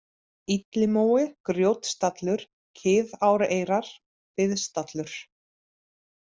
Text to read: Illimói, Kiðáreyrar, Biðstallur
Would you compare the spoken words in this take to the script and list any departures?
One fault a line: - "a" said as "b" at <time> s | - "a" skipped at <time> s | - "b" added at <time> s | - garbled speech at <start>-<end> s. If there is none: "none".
- "Grjótstallur" added at 1.5 s